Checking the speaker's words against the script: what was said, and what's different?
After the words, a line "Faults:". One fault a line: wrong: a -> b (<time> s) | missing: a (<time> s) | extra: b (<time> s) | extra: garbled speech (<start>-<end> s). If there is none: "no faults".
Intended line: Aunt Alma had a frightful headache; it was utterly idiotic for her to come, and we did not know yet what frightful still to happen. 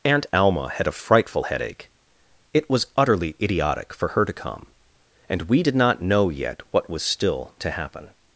Aunt Alma had a frightful headache; it was utterly idiotic for her to come, and we did not know yet what was still to happen.
Faults:
wrong: frightful -> was (6.9 s)